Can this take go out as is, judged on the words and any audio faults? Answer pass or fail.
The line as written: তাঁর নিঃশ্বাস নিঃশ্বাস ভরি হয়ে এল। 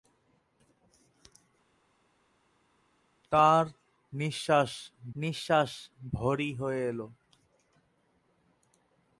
pass